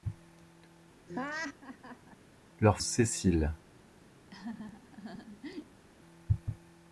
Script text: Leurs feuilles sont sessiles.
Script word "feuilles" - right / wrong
wrong